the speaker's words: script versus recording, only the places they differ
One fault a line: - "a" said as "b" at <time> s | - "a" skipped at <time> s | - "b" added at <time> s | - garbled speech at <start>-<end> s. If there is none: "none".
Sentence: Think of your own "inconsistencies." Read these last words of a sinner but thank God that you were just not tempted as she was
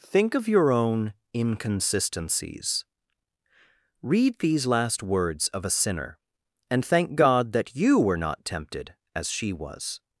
- "but" said as "and" at 6.7 s
- "just" skipped at 8.2 s